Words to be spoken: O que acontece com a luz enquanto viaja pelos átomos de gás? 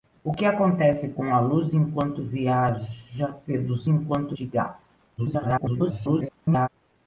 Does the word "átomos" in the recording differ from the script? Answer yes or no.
yes